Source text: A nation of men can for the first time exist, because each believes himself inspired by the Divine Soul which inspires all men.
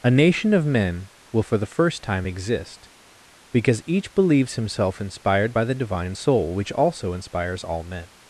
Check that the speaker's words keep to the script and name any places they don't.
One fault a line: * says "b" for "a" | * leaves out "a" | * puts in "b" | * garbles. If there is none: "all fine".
* says "will" for "can"
* puts in "also"